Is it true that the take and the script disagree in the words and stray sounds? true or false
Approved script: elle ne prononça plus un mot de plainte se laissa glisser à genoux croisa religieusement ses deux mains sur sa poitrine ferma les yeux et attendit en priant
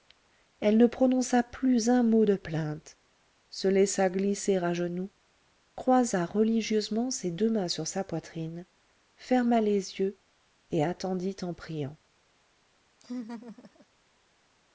true